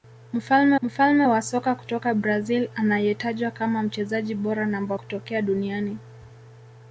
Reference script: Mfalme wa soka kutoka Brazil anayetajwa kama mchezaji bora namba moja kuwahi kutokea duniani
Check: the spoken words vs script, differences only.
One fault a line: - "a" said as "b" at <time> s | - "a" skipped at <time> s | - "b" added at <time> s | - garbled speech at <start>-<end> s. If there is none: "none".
- "mfalme" added at 0.8 s
- "moja kuwahi" skipped at 5.0 s